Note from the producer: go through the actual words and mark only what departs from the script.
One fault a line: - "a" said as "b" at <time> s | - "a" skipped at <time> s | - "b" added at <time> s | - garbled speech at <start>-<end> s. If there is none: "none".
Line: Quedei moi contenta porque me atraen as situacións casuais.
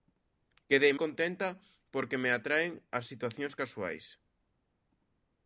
- "moi" skipped at 0.9 s